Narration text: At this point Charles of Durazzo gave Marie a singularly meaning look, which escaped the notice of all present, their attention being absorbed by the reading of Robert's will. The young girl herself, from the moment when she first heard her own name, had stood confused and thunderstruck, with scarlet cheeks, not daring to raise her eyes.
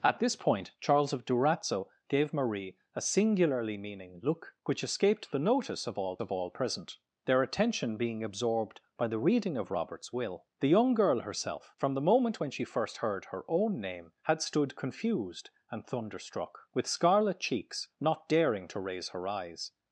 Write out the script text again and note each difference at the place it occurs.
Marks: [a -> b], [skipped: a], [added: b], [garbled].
At this point Charles of Durazzo gave Marie a singularly meaning look, which escaped the notice of all [added: of all] present, their attention being absorbed by the reading of Robert's will. The young girl herself, from the moment when she first heard her own name, had stood confused and thunderstruck, with scarlet cheeks, not daring to raise her eyes.